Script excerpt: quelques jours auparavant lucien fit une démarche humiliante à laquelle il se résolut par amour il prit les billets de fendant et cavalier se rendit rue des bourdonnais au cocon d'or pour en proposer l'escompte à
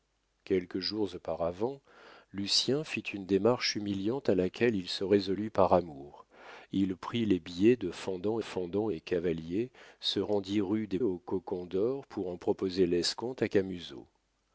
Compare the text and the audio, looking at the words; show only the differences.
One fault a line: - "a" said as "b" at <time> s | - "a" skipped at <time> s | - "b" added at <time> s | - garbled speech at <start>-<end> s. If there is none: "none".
- "fendant" added at 8.4 s
- "bourdonnais" skipped at 11.0 s